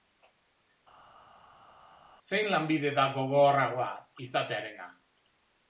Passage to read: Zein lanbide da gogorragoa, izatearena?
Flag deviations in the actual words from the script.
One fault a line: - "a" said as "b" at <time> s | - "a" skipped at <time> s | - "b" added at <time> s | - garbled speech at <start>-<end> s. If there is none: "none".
none